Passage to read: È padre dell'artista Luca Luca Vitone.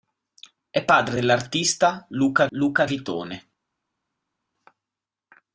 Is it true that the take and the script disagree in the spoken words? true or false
false